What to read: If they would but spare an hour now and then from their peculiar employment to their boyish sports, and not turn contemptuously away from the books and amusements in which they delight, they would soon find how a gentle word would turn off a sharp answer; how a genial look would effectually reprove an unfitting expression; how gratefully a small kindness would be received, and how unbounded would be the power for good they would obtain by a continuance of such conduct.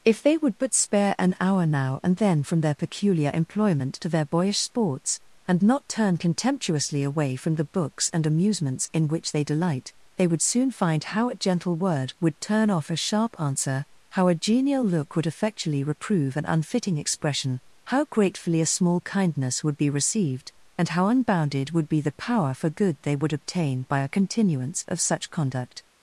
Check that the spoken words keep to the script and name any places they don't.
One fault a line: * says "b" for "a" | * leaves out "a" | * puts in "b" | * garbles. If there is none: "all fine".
all fine